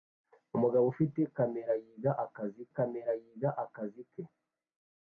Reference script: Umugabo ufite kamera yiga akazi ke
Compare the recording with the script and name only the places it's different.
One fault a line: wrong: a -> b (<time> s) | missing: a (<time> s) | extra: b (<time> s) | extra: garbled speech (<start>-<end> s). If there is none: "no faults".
extra: kamera yiga akazi (2.7 s)